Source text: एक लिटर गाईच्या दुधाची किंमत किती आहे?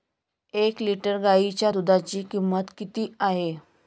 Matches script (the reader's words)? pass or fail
pass